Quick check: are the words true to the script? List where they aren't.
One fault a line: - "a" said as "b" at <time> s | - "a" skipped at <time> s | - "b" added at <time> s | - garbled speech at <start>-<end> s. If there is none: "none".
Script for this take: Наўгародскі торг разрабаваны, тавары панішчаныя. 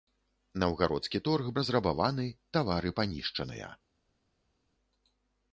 none